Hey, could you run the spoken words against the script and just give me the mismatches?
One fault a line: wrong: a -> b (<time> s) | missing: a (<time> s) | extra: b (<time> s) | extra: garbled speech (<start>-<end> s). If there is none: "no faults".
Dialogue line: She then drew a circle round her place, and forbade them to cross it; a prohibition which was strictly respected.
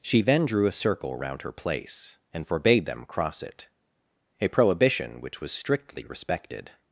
missing: to (3.0 s)